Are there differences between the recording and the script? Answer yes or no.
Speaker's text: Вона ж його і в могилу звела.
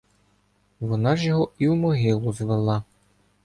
no